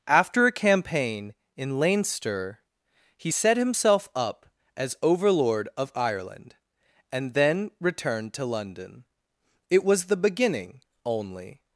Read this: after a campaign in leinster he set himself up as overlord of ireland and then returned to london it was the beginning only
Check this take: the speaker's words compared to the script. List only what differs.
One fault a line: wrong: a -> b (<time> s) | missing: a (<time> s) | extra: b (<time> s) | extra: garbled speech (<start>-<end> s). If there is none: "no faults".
no faults